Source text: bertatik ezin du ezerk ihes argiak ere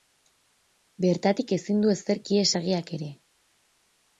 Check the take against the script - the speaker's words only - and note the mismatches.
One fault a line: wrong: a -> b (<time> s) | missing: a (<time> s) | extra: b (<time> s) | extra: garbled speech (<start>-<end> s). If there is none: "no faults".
no faults